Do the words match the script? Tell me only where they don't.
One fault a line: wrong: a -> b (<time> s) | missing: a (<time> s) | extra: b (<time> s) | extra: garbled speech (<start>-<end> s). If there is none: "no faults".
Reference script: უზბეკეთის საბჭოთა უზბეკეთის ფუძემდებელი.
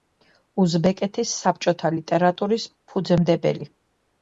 wrong: უზბეკეთის -> ლიტერატურის (2.0 s)